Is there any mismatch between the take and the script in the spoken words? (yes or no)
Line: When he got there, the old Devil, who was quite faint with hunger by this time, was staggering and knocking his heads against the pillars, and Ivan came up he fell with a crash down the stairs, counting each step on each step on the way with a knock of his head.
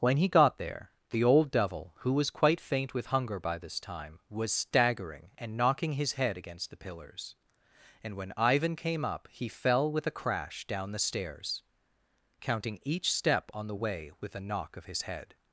yes